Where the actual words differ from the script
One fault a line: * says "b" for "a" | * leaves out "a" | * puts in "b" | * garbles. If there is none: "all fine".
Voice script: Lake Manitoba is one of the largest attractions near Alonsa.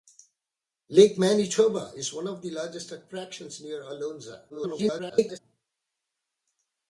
* garbles